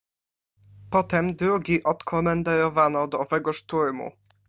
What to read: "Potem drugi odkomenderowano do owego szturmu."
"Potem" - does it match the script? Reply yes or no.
yes